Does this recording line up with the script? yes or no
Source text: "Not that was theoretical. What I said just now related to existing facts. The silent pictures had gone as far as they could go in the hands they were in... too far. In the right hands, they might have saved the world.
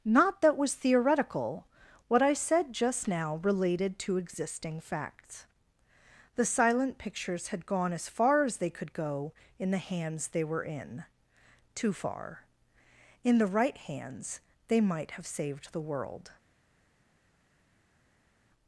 yes